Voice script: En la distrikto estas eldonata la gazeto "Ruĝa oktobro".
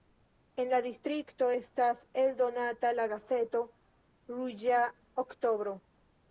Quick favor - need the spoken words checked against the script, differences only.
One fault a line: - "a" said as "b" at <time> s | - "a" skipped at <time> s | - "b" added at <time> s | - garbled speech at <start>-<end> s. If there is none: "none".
none